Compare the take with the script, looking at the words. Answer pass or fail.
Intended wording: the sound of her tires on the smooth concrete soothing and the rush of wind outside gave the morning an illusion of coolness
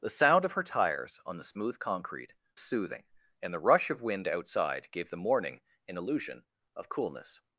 pass